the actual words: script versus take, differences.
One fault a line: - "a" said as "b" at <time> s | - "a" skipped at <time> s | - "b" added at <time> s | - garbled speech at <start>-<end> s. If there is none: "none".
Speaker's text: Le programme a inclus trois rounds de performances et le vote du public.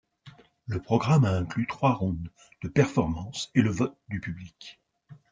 none